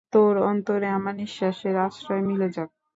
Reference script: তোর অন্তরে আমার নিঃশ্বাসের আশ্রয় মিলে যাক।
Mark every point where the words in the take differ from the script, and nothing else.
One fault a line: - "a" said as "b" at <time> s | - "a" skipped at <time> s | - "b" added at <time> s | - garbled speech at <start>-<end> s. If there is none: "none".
none